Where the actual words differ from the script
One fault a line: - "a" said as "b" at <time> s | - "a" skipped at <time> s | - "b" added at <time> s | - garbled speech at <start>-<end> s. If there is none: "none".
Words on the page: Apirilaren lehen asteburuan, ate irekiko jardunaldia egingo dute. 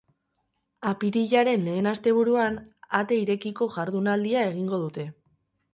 none